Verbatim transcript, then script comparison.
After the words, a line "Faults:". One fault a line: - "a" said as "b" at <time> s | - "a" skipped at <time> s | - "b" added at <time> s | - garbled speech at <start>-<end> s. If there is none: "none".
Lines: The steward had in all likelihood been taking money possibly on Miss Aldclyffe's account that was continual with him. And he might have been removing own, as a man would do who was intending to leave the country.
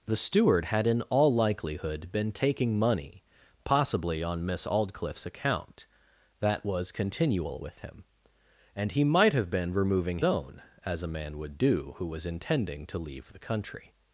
The steward had in all likelihood been taking money possibly on Miss Aldclyffe's account that was continual with him. And he might have been removing own, as a man would do who was intending to leave the country.
Faults:
none